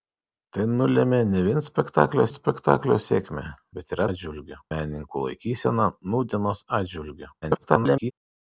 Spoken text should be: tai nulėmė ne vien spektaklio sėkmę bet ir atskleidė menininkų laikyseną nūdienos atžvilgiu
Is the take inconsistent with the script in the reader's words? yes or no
yes